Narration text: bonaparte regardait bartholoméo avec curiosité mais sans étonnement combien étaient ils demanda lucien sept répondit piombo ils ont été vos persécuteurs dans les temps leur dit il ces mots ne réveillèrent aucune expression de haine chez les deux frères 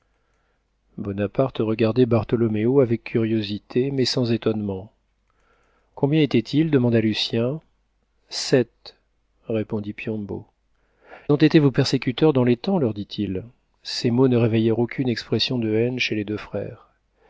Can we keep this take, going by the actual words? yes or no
no